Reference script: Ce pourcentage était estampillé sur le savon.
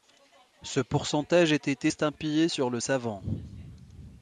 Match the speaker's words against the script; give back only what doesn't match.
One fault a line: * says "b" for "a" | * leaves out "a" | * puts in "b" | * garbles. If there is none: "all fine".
all fine